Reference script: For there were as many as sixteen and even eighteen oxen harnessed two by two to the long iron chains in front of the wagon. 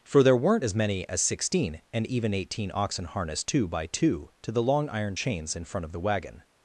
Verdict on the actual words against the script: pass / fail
fail